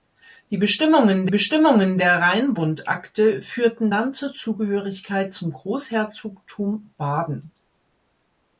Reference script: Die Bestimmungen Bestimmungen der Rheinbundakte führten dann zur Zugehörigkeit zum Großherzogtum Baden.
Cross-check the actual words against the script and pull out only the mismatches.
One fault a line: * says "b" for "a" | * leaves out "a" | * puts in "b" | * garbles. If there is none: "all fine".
all fine